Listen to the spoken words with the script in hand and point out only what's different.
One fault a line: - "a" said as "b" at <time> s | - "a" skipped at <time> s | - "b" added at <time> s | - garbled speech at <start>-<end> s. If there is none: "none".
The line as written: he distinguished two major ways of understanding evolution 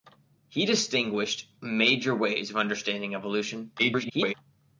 - "two" skipped at 1.6 s
- garbled speech at 3.8-4.3 s